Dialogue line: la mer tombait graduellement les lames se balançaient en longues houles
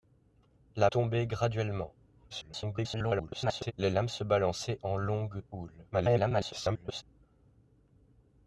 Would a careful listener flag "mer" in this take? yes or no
yes